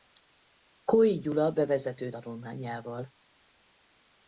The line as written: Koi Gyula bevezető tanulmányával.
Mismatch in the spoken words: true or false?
false